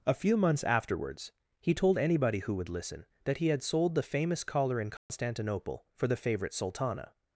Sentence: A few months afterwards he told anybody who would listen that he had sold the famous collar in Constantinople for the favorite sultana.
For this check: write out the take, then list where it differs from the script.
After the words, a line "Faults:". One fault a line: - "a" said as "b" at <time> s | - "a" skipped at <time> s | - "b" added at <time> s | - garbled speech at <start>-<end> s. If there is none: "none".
A few months afterwards he told anybody who would listen that he had sold the famous collar in Constantinople for the favorite sultana.
Faults:
none